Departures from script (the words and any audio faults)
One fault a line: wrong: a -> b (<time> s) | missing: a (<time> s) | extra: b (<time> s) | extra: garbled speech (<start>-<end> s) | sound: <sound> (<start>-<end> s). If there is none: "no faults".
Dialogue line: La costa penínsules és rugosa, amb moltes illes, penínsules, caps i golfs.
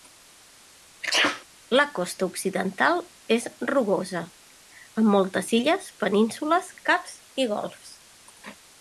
sound: sneeze (1.0-1.4 s)
wrong: penínsules -> occidental (2.3 s)